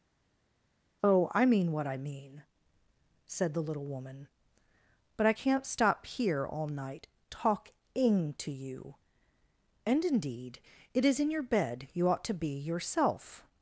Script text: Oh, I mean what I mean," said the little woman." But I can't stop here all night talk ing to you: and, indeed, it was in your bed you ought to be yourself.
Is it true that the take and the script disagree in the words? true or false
true